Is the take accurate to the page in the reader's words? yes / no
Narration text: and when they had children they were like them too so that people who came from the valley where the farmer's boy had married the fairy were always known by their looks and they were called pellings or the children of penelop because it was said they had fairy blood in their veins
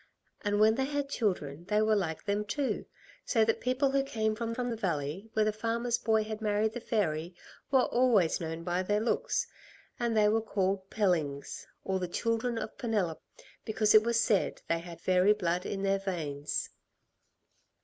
no